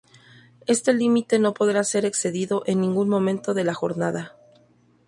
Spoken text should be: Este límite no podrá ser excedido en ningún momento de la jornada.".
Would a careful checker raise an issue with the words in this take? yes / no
no